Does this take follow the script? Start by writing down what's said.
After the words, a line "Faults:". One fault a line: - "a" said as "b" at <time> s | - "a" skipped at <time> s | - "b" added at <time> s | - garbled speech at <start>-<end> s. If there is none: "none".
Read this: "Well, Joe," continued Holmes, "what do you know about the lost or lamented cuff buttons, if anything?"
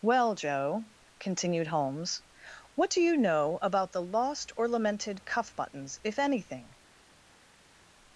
"Well, Joe," continued Holmes, "what do you know about the lost or lamented cuff buttons, if anything?"
Faults:
none